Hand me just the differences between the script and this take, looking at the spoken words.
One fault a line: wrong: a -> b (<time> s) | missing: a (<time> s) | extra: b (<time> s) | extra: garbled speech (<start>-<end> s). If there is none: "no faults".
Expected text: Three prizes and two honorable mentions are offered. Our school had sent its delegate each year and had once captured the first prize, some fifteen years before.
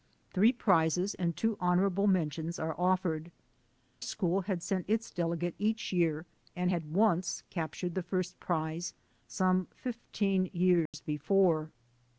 missing: Our (3.3 s)